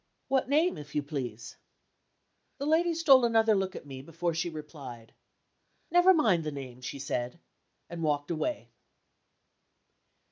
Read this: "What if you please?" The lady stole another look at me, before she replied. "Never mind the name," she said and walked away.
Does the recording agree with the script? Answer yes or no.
no